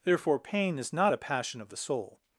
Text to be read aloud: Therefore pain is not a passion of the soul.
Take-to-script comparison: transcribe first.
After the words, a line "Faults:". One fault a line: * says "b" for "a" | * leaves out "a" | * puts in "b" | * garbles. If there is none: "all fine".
Therefore pain is not a passion of the soul.
Faults:
all fine